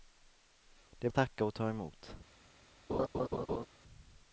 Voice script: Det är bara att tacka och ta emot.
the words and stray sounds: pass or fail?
fail